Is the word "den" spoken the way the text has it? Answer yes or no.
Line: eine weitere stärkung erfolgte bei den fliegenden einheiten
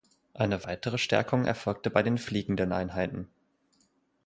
yes